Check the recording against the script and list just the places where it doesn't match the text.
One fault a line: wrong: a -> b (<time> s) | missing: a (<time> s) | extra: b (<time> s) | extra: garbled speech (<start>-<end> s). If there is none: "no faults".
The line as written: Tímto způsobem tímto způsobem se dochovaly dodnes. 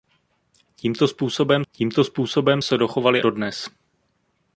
no faults